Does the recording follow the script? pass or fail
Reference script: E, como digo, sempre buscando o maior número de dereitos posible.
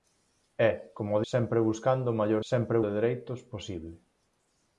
fail